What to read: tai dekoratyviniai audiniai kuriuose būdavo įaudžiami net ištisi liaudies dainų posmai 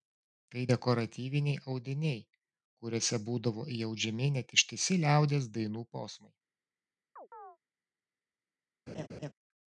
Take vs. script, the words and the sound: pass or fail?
fail